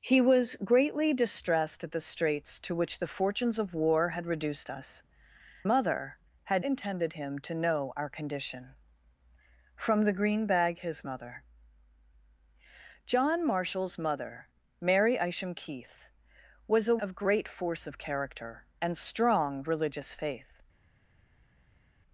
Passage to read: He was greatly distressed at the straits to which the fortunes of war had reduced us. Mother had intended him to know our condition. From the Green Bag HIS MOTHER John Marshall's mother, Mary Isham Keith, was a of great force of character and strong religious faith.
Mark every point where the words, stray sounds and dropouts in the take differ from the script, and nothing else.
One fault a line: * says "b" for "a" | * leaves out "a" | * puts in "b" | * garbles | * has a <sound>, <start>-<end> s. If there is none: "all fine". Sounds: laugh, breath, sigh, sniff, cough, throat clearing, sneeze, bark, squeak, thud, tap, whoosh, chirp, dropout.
all fine